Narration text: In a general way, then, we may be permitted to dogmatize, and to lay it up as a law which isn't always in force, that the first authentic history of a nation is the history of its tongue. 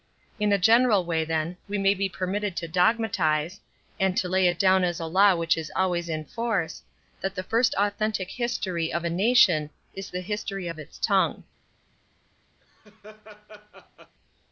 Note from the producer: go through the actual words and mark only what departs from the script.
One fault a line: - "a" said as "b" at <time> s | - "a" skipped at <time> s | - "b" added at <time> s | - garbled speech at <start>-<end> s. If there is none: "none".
- "up" said as "down" at 4.6 s
- "isn't" said as "is" at 5.6 s